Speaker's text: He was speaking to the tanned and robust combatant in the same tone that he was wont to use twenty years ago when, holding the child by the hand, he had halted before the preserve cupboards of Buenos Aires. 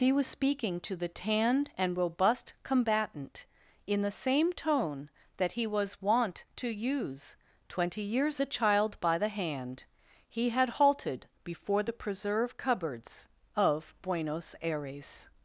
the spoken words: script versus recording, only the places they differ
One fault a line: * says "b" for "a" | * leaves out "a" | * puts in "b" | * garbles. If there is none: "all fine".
* leaves out "ago when holding"